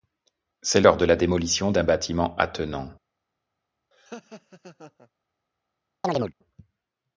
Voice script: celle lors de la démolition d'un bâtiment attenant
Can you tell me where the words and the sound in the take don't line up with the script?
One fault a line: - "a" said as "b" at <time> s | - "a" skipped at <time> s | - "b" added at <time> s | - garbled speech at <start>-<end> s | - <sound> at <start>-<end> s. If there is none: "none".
- laugh at 3.9-5.1 s
- chirp at 6.0-6.3 s